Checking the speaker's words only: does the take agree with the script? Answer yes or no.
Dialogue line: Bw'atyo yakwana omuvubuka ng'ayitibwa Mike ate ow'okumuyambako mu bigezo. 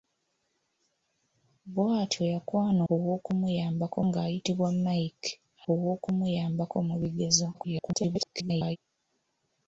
no